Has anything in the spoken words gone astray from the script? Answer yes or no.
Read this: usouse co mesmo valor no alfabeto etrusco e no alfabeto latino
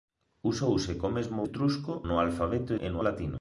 yes